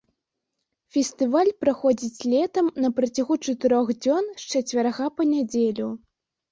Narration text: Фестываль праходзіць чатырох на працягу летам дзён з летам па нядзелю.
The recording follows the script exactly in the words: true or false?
false